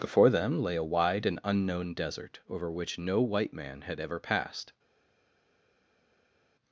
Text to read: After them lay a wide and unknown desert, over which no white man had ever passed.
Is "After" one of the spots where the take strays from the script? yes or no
yes